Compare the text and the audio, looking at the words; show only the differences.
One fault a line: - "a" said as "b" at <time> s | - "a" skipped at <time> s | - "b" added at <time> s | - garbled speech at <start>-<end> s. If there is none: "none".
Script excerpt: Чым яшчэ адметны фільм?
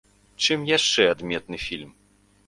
none